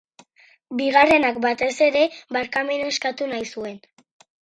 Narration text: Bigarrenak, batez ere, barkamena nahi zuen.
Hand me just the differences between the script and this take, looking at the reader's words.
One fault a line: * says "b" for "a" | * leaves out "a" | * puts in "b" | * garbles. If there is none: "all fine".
* puts in "eskatu"